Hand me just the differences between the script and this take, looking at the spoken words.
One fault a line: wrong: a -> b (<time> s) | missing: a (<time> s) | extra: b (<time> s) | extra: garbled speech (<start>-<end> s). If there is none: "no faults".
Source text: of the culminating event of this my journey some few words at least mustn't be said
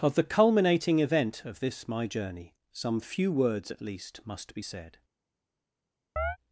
wrong: mustn't -> must (4.2 s)